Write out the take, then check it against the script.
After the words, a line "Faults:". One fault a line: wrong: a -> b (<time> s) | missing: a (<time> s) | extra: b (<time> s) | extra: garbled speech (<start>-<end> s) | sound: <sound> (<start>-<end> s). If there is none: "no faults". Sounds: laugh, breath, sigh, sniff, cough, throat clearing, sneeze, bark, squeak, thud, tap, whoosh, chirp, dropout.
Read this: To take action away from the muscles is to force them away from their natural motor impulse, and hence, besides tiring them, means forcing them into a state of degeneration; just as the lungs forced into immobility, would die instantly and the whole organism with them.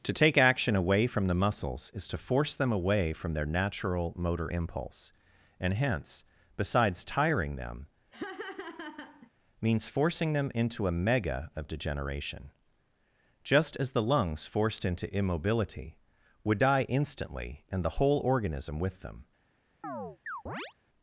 To take action away from the muscles is to force them away from their natural motor impulse, and hence, besides tiring them, means forcing them into a mega of degeneration; just as the lungs forced into immobility, would die instantly and the whole organism with them.
Faults:
sound: laugh (8.1-9.3 s)
wrong: state -> mega (10.9 s)
sound: chirp (19.8-20.7 s)